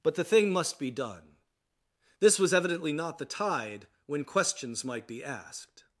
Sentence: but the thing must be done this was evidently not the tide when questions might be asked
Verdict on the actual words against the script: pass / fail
pass